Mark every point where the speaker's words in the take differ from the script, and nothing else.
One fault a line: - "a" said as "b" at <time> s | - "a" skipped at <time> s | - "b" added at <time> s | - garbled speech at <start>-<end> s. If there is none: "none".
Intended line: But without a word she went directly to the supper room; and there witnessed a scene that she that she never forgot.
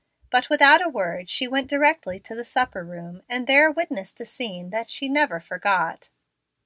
- "that she" skipped at 5.1 s